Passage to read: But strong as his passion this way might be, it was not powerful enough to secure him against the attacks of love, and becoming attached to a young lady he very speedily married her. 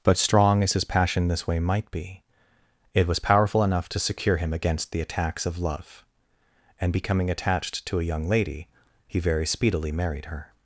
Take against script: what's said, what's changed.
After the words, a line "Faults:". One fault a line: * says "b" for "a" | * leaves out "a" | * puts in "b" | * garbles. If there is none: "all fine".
But strong as his passion this way might be, it was powerful enough to secure him against the attacks of love, and becoming attached to a young lady he very speedily married her.
Faults:
* leaves out "not"